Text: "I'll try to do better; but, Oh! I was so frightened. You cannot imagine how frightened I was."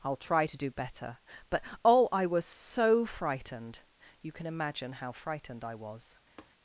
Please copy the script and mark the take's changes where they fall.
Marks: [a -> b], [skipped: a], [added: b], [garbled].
"I'll try to do better; but, Oh! I was so frightened. You [cannot -> can] imagine how frightened I was."